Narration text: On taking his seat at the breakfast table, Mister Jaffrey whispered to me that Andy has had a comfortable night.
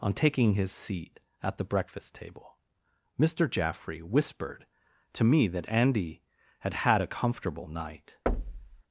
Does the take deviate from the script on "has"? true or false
true